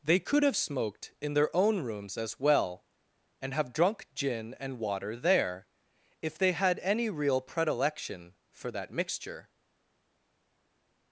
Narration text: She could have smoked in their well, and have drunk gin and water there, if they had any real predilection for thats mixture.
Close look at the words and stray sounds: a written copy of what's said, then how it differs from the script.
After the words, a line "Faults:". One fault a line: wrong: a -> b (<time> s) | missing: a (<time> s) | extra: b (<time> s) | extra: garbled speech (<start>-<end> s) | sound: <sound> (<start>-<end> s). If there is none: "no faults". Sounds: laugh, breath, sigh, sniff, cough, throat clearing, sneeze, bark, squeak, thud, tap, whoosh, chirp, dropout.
They could have smoked in their own rooms as well, and have drunk gin and water there, if they had any real predilection for that mixture.
Faults:
wrong: She -> They (0.0 s)
extra: own rooms as (1.5 s)
wrong: thats -> that (8.7 s)